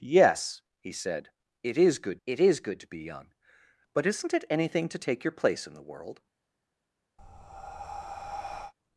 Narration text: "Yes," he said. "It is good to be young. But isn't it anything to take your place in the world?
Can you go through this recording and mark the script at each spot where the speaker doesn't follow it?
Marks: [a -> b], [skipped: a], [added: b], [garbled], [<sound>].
"Yes," he said. "It is good [added: it is good] to be young. But isn't it anything to take your place in the world? [breath]